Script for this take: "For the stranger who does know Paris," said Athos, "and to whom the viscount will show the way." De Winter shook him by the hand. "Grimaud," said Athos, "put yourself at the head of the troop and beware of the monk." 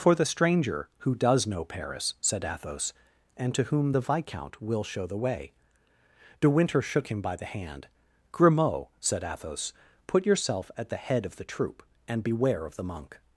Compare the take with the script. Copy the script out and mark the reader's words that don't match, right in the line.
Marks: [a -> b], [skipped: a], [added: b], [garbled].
"For the stranger who does know Paris," said Athos, "and to whom the viscount will show the way." De Winter shook him by the hand. "Grimaud," said Athos, "put yourself at the head of the troop and beware of the monk."